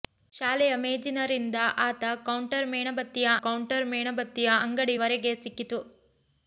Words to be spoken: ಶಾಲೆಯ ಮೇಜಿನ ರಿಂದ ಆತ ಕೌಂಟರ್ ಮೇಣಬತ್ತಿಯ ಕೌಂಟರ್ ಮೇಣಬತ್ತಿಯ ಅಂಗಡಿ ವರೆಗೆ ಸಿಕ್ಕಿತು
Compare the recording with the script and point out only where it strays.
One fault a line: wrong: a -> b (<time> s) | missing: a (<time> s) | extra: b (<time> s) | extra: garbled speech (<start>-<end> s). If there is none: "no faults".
no faults